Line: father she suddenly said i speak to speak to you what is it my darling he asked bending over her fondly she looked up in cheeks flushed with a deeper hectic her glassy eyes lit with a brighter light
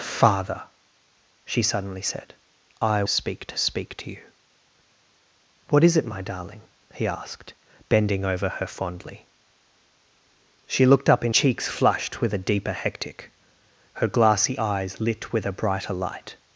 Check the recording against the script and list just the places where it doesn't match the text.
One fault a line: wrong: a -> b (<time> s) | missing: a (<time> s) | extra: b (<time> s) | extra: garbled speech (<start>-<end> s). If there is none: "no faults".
no faults